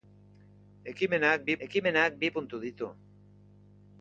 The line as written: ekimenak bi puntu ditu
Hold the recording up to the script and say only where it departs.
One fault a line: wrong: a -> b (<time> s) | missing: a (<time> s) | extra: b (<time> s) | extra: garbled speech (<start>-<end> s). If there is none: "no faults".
extra: ekimenak bi (1.7 s)